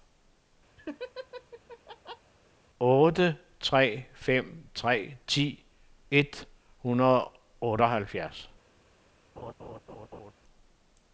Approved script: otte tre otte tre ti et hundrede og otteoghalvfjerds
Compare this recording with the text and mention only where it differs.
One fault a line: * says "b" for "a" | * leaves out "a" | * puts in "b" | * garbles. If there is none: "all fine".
* says "fem" for "otte"